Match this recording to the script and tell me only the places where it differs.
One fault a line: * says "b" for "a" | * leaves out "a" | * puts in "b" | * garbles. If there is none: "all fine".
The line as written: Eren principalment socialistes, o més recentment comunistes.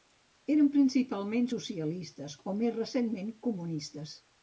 all fine